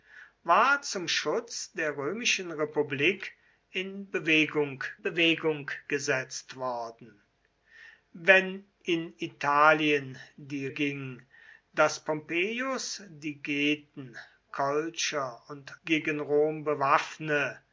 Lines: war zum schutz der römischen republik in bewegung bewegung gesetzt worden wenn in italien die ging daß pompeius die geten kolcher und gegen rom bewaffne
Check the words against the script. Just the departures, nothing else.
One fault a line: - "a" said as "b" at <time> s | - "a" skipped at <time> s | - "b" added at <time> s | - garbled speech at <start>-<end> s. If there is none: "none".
none